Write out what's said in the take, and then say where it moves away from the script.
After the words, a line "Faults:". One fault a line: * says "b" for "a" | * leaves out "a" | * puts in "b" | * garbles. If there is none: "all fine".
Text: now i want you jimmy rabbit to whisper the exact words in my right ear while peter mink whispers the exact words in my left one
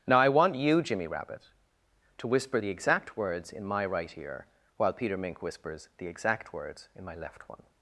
now i want you jimmy rabbit to whisper the exact words in my right ear while peter mink whispers the exact words in my left one
Faults:
all fine